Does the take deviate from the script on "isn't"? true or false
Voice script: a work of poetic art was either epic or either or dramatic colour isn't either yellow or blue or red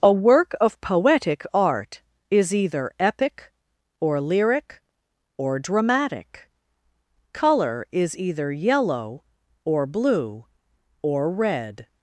true